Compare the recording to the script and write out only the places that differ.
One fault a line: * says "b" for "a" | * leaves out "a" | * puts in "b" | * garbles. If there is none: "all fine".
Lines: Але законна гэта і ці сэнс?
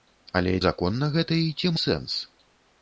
all fine